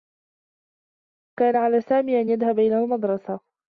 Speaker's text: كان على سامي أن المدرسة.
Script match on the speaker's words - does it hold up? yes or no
no